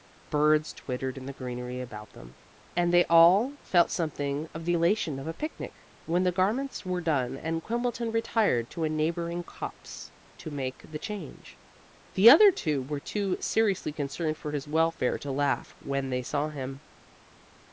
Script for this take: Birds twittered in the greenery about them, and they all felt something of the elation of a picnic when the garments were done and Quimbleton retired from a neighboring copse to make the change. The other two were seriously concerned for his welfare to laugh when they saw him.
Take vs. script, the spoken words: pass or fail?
fail